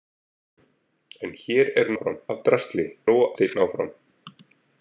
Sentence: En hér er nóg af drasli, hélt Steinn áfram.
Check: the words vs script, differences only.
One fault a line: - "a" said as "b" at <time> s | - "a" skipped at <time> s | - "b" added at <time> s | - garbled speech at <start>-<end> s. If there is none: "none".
- "nóg" said as "áfram" at 1.9 s
- "hélt" said as "nóg" at 3.1 s